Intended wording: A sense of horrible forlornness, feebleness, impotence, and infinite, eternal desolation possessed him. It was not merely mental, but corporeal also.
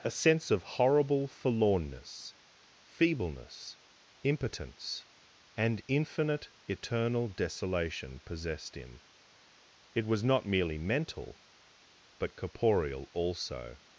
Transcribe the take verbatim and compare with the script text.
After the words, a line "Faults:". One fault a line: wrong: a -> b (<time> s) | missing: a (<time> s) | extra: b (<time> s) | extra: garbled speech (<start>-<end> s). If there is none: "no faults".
A sense of horrible forlornness, feebleness, impotence, and infinite, eternal desolation possessed him. It was not merely mental, but corporeal also.
Faults:
no faults